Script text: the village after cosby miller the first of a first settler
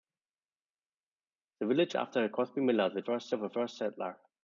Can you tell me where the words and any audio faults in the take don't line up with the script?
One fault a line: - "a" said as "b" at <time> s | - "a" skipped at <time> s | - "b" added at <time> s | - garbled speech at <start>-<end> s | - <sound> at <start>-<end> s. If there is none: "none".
none